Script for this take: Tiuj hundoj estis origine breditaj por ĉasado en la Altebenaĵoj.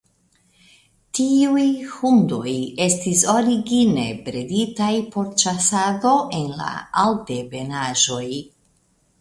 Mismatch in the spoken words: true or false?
false